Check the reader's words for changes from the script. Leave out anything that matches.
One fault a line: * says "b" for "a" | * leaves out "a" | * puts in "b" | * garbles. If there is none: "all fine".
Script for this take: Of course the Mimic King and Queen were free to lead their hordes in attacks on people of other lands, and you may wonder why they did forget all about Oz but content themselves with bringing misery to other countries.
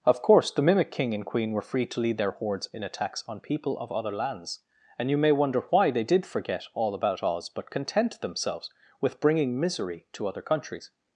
all fine